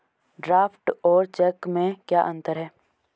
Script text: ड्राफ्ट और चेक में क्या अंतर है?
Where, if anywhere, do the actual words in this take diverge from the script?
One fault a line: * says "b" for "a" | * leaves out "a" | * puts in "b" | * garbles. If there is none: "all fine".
all fine